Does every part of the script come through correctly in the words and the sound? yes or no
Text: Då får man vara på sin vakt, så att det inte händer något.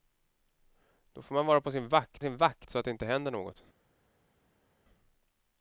no